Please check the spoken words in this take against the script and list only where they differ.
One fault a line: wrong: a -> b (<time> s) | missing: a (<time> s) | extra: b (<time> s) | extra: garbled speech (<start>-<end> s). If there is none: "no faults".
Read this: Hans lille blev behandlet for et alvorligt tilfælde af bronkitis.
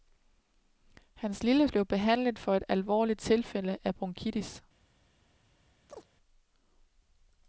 no faults